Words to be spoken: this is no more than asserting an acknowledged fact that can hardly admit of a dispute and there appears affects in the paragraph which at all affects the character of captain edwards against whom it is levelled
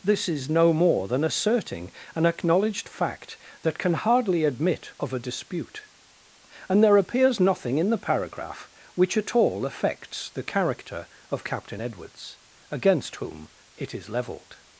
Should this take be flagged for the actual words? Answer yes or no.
yes